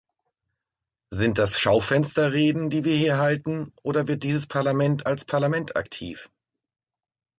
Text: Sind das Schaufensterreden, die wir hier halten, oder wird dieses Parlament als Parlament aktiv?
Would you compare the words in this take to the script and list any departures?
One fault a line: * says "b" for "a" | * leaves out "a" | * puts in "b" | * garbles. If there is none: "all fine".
all fine